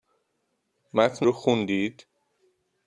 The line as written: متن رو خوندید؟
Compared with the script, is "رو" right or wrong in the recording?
right